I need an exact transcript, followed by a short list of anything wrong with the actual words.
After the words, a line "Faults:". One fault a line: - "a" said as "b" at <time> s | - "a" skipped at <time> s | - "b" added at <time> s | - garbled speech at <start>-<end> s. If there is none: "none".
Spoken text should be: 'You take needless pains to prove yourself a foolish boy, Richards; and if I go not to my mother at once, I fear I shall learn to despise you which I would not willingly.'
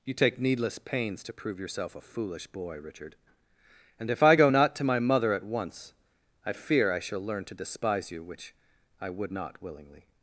'You take needless pains to prove yourself a foolish boy, Richard; and if I go not to my mother at once, I fear I shall learn to despise you which I would not willingly.'
Faults:
- "Richards" said as "Richard" at 2.8 s